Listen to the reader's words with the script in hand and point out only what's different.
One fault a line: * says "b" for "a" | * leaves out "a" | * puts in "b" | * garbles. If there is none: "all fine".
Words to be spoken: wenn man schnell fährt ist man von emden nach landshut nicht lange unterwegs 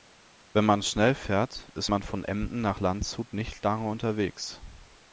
all fine